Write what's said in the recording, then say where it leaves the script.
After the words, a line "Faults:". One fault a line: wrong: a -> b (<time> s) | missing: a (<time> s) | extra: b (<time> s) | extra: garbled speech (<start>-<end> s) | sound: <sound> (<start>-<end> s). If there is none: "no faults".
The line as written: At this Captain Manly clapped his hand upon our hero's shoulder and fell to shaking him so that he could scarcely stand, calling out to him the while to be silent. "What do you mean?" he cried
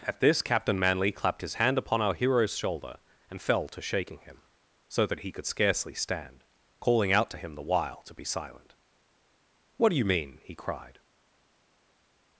At this Captain Manly clapped his hand upon our hero's shoulder and fell to shaking him so that he could scarcely stand, calling out to him the while to be silent. "What do you mean?" he cried
Faults:
no faults